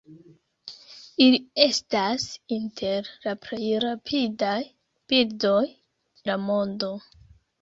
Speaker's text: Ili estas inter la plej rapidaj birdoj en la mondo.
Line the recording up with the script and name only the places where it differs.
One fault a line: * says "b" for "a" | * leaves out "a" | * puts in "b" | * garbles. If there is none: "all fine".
* leaves out "en"